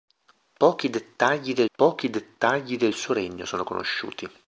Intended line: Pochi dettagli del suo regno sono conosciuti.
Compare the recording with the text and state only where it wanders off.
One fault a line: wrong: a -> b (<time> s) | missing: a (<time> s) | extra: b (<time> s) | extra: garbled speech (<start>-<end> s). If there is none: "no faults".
extra: pochi dettagli del (1.8 s)